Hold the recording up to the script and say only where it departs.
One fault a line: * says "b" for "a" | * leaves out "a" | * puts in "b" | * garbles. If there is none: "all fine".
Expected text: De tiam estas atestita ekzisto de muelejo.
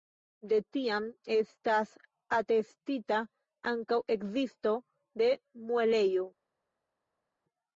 * puts in "ankaŭ"